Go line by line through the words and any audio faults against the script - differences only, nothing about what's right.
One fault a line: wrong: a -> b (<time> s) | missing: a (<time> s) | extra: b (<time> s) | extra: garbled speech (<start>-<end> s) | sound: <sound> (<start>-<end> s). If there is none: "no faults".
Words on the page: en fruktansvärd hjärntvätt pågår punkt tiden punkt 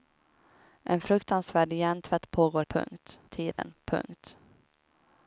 sound: dropout (3.5-3.6 s)